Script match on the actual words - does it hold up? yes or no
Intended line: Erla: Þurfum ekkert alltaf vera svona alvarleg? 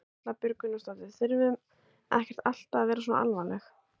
no